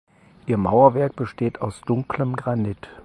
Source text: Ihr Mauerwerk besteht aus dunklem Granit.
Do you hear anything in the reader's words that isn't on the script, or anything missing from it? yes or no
no